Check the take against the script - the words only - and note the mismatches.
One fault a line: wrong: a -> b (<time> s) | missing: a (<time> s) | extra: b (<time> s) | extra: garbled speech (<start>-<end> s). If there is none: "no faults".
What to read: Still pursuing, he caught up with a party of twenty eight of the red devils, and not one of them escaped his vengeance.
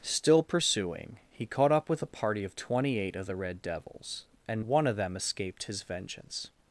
missing: not (4.6 s)